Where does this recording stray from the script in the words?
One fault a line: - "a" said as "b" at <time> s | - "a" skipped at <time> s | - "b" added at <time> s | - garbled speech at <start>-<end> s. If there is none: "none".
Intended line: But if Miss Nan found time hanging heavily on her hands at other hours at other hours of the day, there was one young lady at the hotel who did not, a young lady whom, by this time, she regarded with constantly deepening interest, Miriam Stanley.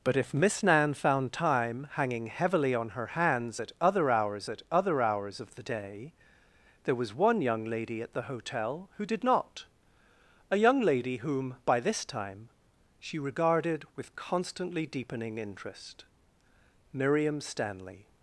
none